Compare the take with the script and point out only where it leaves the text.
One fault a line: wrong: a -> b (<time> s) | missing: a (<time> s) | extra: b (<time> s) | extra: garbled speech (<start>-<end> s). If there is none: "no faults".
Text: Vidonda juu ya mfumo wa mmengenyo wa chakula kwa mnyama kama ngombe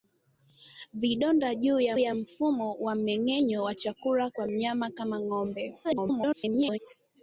extra: ya (2.0 s)
extra: garbled speech (5.8-6.8 s)